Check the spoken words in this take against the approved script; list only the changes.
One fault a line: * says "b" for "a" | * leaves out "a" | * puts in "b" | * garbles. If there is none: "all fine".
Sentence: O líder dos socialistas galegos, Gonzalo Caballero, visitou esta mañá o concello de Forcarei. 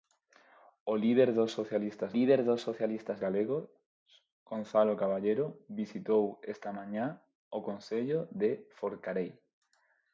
* puts in "líder dos socialistas"